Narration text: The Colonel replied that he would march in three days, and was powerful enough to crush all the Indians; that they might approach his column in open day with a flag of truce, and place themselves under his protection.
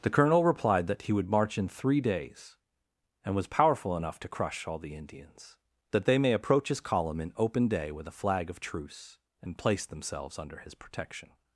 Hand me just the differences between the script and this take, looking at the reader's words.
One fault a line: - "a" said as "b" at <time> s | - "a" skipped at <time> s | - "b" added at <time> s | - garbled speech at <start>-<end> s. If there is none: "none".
- "might" said as "may" at 6.2 s